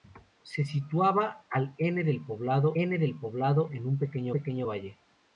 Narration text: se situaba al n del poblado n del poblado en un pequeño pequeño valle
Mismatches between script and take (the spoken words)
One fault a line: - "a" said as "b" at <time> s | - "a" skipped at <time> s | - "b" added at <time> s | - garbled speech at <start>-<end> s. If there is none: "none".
none